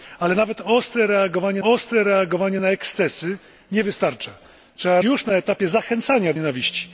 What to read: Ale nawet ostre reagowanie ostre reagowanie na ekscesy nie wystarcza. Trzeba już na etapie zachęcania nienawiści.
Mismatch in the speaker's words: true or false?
false